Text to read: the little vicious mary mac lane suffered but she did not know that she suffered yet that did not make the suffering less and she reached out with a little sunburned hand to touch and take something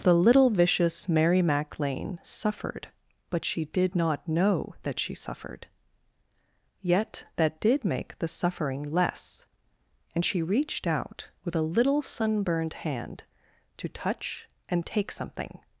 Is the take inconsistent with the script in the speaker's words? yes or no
yes